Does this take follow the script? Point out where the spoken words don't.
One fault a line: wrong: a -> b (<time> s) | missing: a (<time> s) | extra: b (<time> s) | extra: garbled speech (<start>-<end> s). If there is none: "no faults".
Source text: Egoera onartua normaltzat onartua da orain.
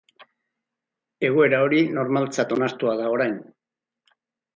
wrong: onartua -> hori (1.6 s)